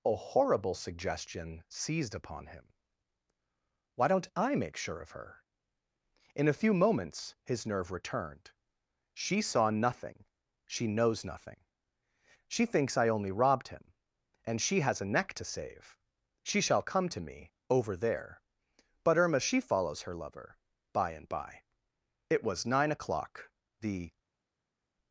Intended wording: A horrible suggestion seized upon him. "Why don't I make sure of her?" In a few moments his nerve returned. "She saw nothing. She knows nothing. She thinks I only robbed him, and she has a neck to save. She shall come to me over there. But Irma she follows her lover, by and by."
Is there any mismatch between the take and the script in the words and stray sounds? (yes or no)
yes